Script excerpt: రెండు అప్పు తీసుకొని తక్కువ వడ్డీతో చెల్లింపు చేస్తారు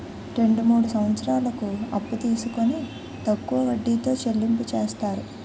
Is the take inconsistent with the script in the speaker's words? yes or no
yes